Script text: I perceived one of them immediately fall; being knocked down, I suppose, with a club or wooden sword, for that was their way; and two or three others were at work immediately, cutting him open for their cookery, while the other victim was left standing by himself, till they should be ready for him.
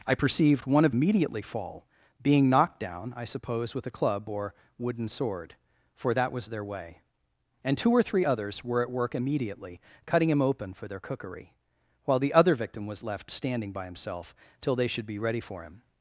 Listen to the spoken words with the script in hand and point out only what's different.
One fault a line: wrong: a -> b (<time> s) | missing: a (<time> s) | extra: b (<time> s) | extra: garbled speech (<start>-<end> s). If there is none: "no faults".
missing: them (0.9 s)